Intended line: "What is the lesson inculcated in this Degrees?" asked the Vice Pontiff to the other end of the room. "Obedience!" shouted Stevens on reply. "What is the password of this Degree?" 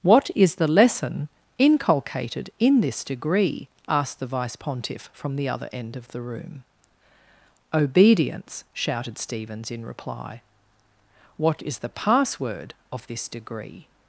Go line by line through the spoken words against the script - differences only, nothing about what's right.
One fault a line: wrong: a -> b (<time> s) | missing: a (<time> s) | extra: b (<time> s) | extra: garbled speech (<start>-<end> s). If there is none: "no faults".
wrong: Degrees -> Degree (3.0 s)
wrong: to -> from (5.1 s)
wrong: on -> in (9.7 s)